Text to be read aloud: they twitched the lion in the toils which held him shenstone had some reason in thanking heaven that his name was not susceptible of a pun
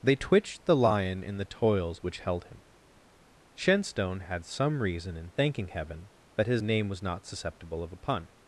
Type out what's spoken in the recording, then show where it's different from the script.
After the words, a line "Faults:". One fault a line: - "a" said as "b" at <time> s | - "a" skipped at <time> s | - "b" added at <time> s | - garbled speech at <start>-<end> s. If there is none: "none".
they twitched the lion in the toils which held him shenstone had some reason in thanking heaven that his name was not susceptible of a pun
Faults:
none